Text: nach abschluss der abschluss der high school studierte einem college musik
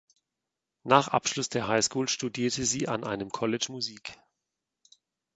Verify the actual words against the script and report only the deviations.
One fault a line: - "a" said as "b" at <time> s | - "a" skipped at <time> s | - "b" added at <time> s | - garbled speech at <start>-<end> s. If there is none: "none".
- "abschluss der" skipped at 1.7 s
- "sie an" added at 2.6 s